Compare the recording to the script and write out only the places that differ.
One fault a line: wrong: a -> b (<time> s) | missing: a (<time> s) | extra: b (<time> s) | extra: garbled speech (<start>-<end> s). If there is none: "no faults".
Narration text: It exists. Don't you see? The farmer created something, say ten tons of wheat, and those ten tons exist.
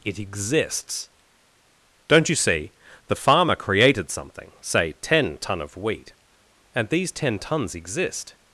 wrong: tons -> ton (5.4 s)
wrong: those -> these (6.9 s)